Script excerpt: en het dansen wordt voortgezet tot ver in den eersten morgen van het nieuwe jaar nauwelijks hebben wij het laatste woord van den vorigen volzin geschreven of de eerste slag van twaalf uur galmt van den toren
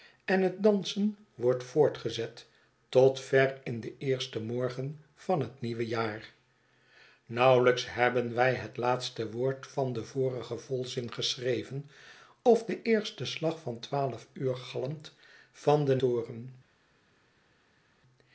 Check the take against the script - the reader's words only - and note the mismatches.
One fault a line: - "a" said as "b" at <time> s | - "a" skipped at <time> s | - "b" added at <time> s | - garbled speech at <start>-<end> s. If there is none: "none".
none